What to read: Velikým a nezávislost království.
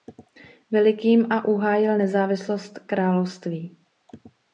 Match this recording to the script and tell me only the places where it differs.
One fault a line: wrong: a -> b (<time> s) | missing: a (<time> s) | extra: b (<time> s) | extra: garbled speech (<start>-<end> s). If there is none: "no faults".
extra: uhájil (1.4 s)